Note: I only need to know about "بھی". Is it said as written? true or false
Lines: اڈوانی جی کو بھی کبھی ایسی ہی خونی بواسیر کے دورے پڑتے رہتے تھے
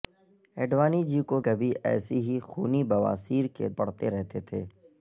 false